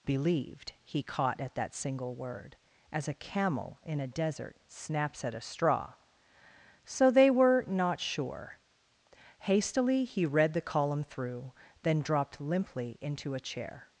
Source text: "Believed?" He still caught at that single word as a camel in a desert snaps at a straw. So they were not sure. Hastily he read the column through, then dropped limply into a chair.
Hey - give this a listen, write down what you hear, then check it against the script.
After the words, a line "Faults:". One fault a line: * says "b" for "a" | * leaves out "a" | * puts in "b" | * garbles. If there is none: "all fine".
"Believed?" He caught at that single word as a camel in a desert snaps at a straw. So they were not sure. Hastily he read the column through, then dropped limply into a chair.
Faults:
* leaves out "still"